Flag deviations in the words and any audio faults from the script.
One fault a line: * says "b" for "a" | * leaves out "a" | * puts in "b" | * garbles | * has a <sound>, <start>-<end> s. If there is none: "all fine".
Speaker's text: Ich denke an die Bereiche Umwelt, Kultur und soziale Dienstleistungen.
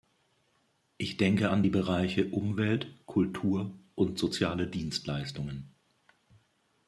all fine